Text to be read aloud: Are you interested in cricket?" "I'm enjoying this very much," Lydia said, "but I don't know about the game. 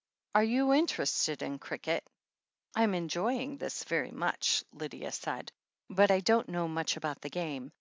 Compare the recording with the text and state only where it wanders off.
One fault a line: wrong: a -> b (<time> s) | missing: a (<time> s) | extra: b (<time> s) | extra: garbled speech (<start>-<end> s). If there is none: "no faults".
extra: much (6.7 s)